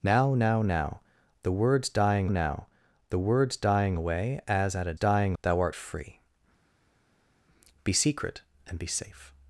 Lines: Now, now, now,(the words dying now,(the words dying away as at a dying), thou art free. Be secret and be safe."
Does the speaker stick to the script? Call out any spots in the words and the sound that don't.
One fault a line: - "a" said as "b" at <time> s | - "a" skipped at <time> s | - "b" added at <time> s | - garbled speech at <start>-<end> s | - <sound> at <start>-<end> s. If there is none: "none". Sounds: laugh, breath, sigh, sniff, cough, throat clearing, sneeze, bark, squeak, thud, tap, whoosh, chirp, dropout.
none